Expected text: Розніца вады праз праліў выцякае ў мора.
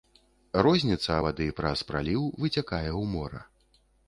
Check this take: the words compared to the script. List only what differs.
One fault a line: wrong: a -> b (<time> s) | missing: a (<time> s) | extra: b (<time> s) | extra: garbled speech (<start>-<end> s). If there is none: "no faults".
no faults